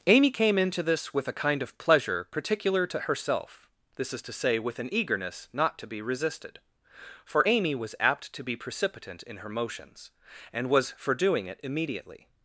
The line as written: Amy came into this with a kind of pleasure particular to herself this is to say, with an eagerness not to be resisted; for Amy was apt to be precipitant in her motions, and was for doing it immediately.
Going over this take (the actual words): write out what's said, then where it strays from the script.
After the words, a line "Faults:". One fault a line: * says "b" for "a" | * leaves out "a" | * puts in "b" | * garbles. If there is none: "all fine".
Amy came into this with a kind of pleasure particular to herself this is to say, with an eagerness not to be resisted; for Amy was apt to be precipitant in her motions, and was for doing it immediately.
Faults:
all fine